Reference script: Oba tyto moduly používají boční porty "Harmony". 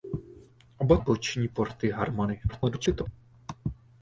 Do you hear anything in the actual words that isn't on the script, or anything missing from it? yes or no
yes